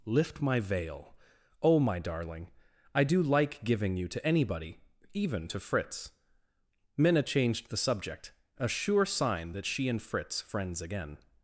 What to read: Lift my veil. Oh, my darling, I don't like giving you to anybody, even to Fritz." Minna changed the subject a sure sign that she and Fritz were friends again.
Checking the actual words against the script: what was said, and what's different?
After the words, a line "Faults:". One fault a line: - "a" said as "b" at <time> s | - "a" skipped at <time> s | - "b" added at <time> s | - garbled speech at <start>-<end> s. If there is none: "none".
Lift my veil. Oh, my darling, I do like giving you to anybody, even to Fritz." Minna changed the subject a sure sign that she and Fritz friends again.
Faults:
- "don't" said as "do" at 3.0 s
- "were" skipped at 10.4 s